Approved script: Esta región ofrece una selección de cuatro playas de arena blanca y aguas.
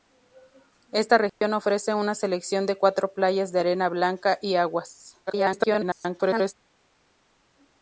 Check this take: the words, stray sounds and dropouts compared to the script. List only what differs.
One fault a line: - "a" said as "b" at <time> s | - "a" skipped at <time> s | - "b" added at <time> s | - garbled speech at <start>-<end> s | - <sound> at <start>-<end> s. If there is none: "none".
- dropout at 1.3-1.4 s
- garbled speech at 5.3-6.5 s